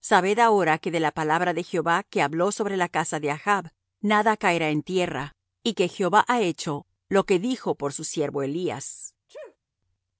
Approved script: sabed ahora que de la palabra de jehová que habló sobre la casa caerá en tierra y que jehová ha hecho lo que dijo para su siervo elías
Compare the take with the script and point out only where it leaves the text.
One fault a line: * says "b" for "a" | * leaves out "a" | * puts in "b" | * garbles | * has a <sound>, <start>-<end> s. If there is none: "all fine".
* puts in "de achb nada"
* says "por" for "para"
* has a sneeze, 9.3-9.6 s